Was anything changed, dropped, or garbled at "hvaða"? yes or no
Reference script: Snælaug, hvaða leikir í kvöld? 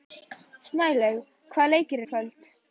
no